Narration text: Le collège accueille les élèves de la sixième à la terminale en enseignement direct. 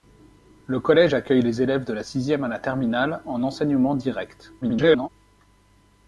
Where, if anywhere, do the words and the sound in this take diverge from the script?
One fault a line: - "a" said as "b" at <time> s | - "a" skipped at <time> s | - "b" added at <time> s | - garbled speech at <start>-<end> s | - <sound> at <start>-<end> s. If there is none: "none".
- garbled speech at 4.6-5.1 s